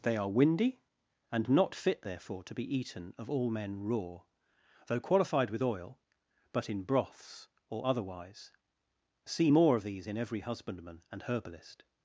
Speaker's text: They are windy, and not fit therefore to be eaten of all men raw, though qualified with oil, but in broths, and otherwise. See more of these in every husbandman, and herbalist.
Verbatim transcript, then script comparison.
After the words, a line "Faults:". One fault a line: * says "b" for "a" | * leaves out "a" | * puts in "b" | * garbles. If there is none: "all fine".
They are windy, and not fit therefore to be eaten of all men raw, though qualified with oil, but in broths, or otherwise. See more of these in every husbandman, and herbalist.
Faults:
* says "or" for "and"